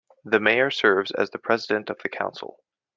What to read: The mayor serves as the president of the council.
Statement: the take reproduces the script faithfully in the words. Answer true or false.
true